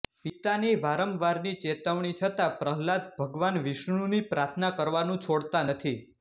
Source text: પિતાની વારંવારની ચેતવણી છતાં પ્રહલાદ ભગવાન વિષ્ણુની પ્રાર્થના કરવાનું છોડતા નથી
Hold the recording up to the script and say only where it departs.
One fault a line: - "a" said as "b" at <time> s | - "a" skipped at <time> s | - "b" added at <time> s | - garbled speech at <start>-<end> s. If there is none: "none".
none